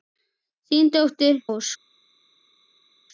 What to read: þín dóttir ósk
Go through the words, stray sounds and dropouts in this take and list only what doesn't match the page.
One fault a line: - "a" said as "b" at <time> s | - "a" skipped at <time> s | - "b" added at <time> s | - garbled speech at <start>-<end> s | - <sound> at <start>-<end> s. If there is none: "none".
none